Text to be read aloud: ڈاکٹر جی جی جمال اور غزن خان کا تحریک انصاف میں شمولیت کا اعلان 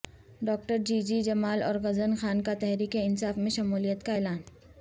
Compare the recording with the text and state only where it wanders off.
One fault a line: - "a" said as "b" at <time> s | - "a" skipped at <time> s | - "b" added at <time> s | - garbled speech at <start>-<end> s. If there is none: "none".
none